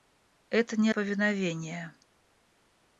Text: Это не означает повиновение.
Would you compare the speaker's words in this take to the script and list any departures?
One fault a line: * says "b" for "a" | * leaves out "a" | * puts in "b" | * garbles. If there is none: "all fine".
* leaves out "означает"